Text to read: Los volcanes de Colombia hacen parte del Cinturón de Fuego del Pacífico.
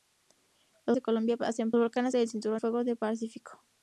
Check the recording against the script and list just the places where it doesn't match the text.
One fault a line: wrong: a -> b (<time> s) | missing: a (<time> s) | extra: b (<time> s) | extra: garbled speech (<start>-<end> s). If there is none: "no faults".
missing: volcanes (1.0 s)
wrong: parte -> volcanes (1.8 s)
missing: de (2.6 s)